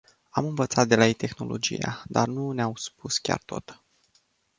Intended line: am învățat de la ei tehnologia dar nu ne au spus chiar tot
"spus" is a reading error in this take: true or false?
false